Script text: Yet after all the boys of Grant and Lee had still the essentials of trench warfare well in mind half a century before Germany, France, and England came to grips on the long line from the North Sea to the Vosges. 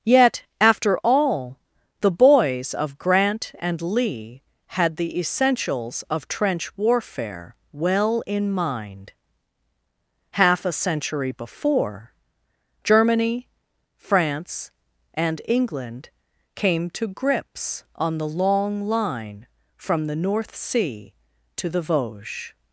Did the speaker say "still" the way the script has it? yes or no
no